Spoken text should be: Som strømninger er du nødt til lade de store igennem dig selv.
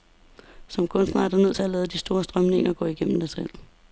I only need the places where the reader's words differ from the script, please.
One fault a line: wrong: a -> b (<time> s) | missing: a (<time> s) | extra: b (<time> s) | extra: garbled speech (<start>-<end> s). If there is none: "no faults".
wrong: strømninger -> kunstner (0.9 s)
extra: at (1.6 s)
extra: strømninger gå (2.2 s)